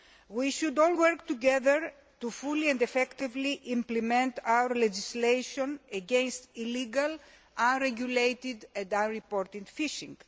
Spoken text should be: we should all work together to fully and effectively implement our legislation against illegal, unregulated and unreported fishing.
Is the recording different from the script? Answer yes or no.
no